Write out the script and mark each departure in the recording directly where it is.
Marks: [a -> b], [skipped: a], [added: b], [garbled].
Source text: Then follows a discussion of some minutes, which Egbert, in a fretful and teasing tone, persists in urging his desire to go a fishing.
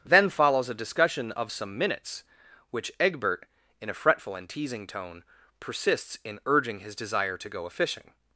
Then follows a discussion of some minutes, which Egbert, in a fretful and teasing tone, persists in urging his desire to go a fishing.